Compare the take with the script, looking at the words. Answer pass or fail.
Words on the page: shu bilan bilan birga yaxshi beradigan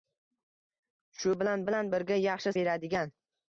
pass